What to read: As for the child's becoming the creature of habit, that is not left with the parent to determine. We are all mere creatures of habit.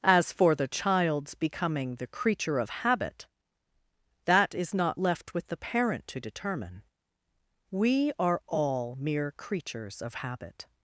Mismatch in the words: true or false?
false